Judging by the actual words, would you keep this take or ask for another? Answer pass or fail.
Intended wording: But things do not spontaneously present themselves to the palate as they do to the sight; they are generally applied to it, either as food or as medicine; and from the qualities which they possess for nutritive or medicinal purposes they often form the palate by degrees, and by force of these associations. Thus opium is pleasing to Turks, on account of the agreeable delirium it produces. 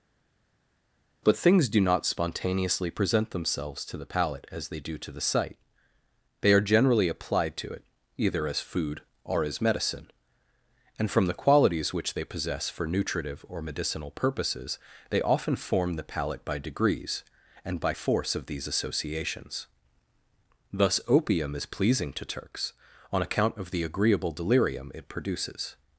pass